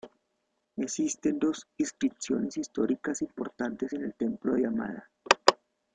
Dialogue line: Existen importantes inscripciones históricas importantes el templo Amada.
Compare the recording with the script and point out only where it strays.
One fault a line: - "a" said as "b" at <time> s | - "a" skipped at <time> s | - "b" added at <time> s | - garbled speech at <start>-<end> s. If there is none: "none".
- "importantes" said as "dos" at 1.4 s
- "en" added at 3.9 s
- "de" added at 4.5 s